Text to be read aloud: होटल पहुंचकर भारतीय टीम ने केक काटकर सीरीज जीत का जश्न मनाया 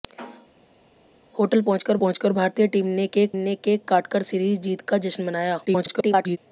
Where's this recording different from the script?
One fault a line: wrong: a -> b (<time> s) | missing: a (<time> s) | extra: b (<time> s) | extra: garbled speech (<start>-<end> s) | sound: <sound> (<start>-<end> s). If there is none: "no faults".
extra: पहुंचकर (2.0 s)
extra: ने केक (3.4 s)
extra: garbled speech (5.7-6.4 s)